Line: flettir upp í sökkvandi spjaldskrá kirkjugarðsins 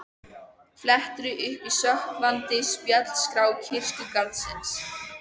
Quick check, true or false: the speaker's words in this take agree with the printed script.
true